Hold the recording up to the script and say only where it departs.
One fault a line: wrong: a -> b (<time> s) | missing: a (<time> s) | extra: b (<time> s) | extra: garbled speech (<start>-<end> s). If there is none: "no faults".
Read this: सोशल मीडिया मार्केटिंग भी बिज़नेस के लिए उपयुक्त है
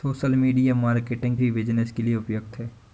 no faults